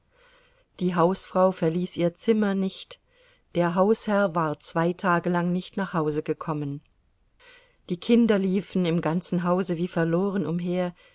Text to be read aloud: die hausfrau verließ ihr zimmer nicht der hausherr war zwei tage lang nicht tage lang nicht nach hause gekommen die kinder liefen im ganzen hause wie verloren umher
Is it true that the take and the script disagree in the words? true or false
true